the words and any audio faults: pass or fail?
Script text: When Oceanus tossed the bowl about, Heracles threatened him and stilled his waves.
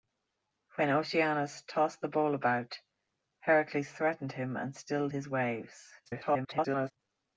fail